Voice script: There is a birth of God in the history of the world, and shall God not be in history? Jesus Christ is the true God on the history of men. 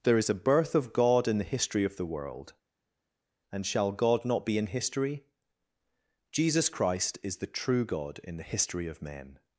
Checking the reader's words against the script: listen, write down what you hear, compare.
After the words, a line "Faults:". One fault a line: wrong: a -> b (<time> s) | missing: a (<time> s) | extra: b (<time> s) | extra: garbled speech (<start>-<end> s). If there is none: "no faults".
There is a birth of God in the history of the world, and shall God not be in history? Jesus Christ is the true God in the history of men.
Faults:
wrong: on -> in (8.2 s)